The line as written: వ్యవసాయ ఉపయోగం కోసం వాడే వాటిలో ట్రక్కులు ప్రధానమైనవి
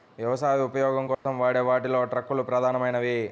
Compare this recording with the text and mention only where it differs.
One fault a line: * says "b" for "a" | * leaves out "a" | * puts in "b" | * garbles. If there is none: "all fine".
all fine